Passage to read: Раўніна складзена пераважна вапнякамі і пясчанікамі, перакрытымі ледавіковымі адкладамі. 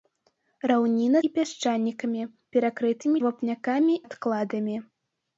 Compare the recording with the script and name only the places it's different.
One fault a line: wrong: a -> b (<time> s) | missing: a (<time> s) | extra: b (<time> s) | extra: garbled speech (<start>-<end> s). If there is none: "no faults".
missing: складзена пераважна вапнякамі (1.2 s)
wrong: ледавіковымі -> вапнякамі (3.3 s)